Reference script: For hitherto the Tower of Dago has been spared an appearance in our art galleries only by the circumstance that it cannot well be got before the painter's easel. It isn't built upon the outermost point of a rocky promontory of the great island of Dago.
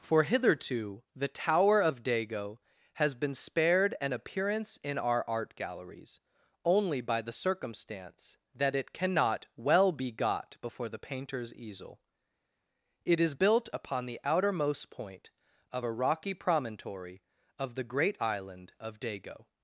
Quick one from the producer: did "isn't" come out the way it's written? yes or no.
no